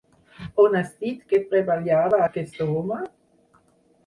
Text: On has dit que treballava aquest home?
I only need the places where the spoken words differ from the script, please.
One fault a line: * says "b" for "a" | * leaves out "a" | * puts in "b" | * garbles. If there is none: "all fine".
all fine